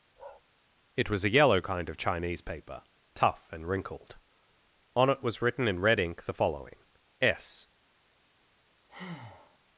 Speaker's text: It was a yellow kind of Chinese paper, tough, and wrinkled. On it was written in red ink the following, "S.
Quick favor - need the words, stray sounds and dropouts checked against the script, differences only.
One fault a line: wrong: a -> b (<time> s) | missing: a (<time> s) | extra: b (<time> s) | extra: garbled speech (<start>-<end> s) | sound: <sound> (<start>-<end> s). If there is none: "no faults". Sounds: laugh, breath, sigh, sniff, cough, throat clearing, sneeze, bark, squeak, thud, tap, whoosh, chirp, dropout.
sound: bark (0.2-0.4 s)
sound: breath (8.9-9.6 s)